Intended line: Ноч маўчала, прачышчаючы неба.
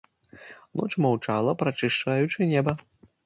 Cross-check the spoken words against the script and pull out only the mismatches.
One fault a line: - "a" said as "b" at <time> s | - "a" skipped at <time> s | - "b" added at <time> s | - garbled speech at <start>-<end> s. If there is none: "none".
none